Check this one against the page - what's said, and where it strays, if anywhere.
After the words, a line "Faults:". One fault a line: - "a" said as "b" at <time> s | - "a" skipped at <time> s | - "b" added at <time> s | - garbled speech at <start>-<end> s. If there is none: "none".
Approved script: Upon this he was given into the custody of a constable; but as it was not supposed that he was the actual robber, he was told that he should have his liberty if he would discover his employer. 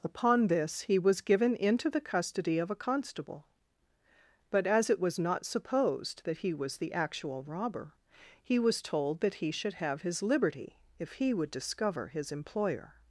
Upon this he was given into the custody of a constable; but as it was not supposed that he was the actual robber, he was told that he should have his liberty if he would discover his employer.
Faults:
none